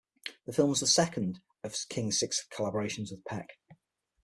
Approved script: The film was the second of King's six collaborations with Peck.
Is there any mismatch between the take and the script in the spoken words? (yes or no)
no